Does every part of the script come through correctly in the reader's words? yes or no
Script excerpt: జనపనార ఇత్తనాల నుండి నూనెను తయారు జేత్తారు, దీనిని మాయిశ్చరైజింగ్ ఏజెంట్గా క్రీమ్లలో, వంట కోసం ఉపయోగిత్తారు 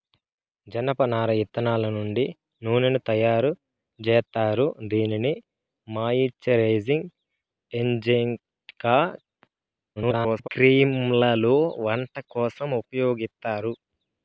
no